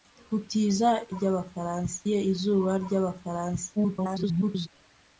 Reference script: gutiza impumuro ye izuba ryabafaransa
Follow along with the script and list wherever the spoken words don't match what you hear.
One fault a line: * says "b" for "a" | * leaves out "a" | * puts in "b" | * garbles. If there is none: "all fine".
* says "ryabafaransa" for "impumuro"
* garbles